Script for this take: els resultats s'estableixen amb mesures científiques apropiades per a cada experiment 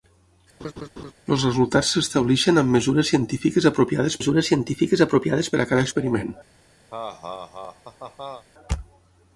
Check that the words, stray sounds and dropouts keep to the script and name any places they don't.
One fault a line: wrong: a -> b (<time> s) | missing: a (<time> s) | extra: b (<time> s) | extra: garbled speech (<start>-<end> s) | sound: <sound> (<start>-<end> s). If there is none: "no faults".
sound: laugh (0.6-1.1 s)
extra: mesures científiques apropiades (4.2 s)
sound: laugh (6.9-8.4 s)